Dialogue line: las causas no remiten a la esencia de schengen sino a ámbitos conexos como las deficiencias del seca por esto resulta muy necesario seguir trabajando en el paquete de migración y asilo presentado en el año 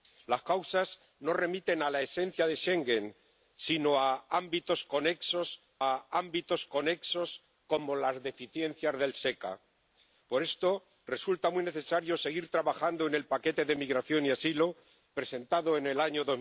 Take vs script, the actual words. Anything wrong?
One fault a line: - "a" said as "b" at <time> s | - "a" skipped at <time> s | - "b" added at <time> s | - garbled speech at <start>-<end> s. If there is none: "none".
- "a ámbitos conexos" added at 5.8 s